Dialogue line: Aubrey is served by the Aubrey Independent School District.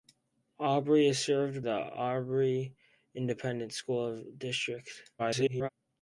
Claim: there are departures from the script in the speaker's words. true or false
true